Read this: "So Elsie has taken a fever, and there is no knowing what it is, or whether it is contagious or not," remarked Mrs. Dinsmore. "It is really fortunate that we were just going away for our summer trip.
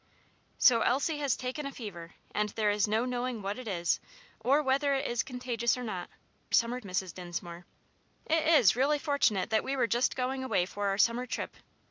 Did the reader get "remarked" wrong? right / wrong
wrong